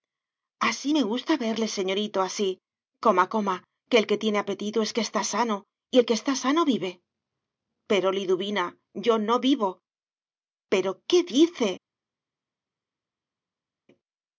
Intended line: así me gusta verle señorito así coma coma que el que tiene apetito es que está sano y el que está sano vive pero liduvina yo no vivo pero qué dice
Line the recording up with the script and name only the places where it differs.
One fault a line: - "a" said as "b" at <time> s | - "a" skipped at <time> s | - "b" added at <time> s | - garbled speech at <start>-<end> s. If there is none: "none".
none